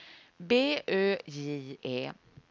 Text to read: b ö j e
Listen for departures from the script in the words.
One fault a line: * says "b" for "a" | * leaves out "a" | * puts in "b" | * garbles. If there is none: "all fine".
all fine